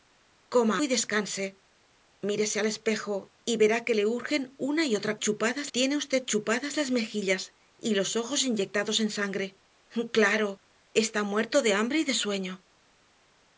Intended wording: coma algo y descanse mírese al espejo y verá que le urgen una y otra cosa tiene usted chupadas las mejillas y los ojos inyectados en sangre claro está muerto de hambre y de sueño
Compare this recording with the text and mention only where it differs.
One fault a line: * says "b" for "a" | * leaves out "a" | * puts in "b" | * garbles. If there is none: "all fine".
* leaves out "algo"
* says "chupadas" for "cosa"